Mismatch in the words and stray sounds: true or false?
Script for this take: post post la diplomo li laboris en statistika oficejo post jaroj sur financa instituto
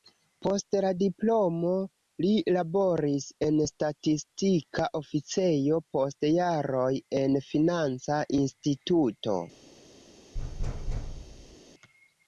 true